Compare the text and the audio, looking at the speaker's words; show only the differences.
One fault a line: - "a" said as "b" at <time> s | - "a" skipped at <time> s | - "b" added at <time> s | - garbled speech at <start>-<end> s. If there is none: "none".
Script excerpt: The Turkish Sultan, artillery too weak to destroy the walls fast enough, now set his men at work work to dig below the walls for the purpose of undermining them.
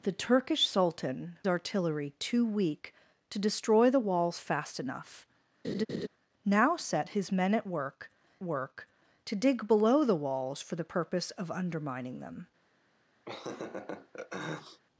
none